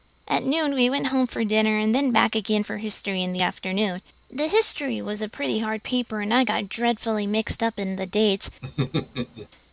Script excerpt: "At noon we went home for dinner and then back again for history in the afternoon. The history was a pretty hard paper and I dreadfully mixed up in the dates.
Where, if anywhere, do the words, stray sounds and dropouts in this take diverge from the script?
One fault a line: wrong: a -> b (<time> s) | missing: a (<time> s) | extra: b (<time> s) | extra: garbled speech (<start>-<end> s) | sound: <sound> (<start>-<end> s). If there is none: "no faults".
extra: got (6.4 s)
sound: laugh (8.6-9.5 s)